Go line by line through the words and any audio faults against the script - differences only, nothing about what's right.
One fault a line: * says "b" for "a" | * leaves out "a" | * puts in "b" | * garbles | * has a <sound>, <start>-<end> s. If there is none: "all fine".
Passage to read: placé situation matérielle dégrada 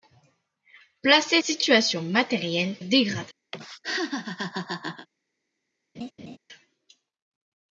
* has a laugh, 3.5-5.1 s
* has a laugh, 5.9-6.4 s